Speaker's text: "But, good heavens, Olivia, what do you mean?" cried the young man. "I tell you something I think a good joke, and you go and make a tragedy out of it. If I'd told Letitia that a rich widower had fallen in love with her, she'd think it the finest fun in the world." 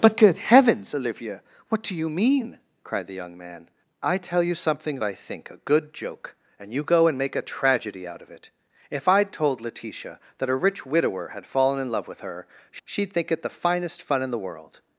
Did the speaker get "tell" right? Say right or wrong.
right